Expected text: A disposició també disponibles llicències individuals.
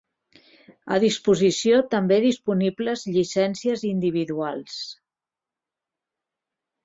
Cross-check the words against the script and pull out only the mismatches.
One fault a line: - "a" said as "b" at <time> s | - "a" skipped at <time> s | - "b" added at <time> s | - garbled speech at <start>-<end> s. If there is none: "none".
none